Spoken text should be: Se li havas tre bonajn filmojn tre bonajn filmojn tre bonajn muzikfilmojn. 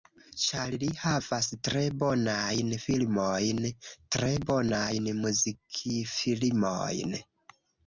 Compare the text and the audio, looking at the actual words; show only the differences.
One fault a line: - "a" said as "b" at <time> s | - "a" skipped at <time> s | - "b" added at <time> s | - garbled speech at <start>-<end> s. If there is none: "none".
- "Se" said as "Ĉar" at 0.4 s
- "filmojn tre bonajn" skipped at 5.1 s